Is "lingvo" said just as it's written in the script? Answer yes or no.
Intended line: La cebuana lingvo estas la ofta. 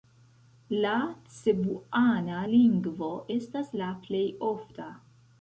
yes